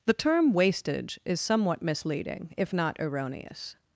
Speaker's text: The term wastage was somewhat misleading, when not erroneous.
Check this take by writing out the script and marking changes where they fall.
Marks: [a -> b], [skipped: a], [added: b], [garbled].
The term wastage [was -> is] somewhat misleading, [when -> if] not erroneous.